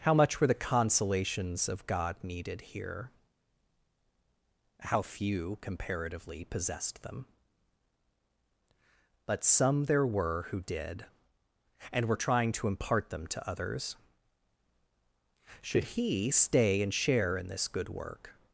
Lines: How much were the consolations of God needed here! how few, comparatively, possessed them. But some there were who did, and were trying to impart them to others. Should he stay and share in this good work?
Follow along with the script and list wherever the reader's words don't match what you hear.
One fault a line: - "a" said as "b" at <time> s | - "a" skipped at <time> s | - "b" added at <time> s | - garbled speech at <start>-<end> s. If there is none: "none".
none